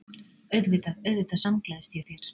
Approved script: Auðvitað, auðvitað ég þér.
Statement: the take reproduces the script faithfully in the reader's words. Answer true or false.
false